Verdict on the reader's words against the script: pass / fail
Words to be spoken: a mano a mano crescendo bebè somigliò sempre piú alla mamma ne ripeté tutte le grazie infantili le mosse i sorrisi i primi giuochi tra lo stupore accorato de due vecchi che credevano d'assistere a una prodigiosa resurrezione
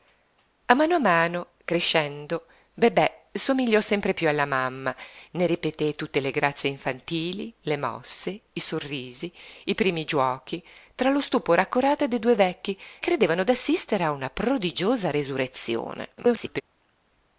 fail